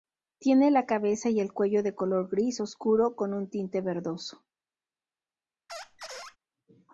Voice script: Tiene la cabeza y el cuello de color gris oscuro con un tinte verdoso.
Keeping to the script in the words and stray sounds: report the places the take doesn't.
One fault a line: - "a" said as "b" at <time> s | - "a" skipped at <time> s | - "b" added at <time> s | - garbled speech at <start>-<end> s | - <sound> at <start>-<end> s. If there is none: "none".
- squeak at 5.7-6.4 s